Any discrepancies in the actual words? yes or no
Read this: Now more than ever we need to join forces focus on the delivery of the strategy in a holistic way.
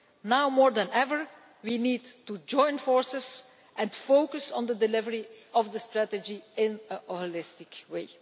yes